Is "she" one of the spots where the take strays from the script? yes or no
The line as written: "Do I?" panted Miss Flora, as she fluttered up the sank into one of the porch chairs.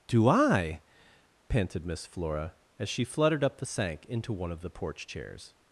no